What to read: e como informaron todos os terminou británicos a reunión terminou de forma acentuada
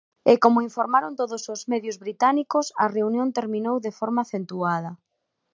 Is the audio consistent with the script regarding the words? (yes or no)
no